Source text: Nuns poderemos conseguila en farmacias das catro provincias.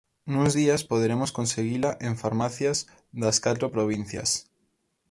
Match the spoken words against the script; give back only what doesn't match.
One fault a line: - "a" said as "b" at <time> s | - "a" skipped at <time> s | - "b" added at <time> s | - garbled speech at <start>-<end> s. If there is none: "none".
- "días" added at 0.5 s